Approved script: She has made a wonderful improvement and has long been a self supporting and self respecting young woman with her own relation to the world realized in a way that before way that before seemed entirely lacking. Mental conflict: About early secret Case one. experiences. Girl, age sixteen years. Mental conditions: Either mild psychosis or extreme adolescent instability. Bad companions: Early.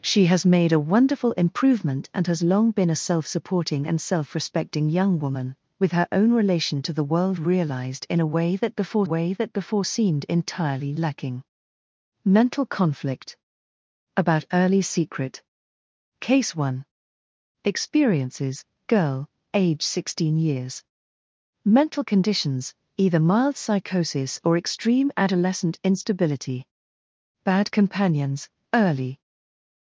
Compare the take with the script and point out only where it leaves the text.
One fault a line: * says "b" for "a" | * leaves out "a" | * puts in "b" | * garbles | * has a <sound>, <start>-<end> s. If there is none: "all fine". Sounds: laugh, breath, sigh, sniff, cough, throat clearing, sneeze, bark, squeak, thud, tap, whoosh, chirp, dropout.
all fine